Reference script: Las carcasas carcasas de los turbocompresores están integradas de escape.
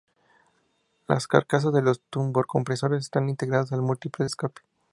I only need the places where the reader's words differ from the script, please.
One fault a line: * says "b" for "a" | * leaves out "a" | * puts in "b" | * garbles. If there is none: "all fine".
* leaves out "carcasas"
* puts in "al múltiple"